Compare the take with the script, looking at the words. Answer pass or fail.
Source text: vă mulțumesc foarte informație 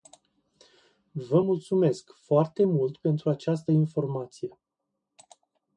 fail